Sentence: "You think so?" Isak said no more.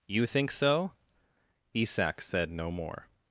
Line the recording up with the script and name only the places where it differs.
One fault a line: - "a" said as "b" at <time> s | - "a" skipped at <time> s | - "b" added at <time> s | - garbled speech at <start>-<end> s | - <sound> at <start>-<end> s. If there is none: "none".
none